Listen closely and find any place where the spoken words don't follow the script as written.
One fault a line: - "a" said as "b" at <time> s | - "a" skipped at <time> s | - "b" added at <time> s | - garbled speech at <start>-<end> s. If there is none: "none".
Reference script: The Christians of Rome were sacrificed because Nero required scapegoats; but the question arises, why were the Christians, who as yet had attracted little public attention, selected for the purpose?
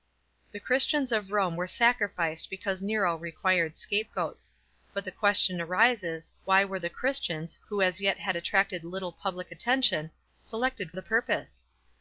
- "for" skipped at 10.9 s